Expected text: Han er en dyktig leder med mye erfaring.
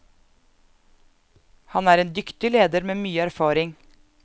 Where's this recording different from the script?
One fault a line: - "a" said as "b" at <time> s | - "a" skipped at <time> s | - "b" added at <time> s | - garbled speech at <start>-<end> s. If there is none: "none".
none